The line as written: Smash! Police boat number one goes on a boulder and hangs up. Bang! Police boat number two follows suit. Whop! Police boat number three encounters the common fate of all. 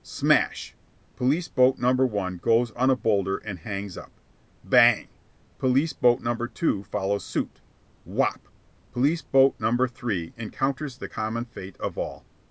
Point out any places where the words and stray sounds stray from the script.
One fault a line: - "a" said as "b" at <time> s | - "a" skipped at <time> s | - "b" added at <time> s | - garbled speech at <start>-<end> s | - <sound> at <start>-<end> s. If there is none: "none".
none